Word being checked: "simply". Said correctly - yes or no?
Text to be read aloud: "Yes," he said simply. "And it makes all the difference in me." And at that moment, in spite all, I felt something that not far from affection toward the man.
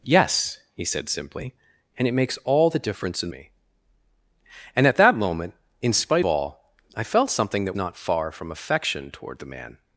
yes